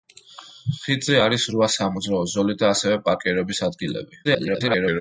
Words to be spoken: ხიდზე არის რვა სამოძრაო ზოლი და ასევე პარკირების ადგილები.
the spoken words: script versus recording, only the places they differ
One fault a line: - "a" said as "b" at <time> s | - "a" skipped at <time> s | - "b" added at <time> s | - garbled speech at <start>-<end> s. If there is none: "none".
- garbled speech at 4.2-5.0 s